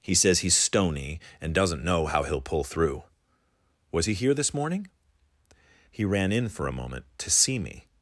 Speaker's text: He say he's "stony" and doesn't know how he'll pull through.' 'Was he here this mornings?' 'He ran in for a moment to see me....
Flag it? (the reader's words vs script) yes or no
yes